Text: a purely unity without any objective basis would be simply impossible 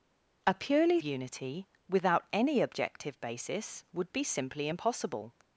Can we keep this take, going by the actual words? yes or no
yes